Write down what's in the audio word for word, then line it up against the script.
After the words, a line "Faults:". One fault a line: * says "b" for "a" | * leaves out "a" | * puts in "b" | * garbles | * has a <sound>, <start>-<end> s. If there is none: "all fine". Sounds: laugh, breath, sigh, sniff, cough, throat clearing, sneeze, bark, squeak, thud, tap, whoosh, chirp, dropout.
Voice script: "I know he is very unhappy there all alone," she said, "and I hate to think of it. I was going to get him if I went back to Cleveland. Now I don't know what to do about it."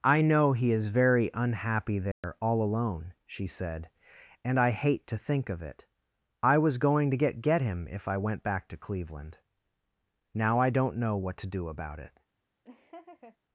"I know he is very unhappy there all alone," she said, "and I hate to think of it. I was going to get get him if I went back to Cleveland. Now I don't know what to do about it."
Faults:
* has a dropout, 2.1-2.2 s
* puts in "get"
* has a laugh, 12.6-13.4 s